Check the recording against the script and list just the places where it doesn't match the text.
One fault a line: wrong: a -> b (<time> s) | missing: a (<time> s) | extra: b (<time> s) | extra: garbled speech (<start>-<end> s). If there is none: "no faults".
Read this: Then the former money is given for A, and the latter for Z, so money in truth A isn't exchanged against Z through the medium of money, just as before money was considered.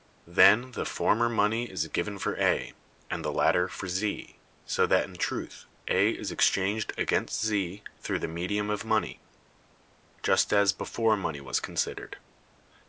wrong: money -> that (4.9 s)
wrong: isn't -> is (6.1 s)